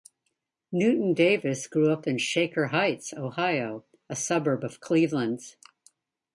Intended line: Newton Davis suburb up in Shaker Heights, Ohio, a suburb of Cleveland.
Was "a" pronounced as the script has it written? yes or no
yes